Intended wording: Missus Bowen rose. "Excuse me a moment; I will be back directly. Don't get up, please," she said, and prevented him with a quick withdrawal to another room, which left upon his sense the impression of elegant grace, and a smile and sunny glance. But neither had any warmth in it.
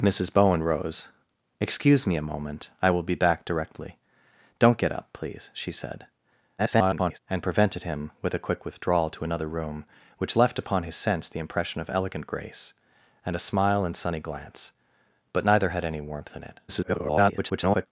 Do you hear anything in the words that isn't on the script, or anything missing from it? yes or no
yes